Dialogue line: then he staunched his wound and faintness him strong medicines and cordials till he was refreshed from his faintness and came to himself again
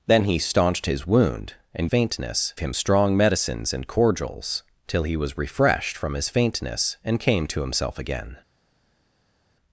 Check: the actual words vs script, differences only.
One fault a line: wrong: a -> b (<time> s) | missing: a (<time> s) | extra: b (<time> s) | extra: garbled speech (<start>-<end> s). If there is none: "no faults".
no faults